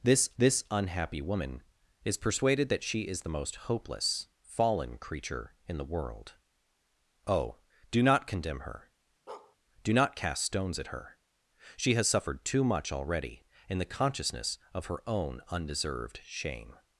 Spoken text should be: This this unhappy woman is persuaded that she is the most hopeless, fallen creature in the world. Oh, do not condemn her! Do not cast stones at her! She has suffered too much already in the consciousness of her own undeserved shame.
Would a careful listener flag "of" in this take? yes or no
no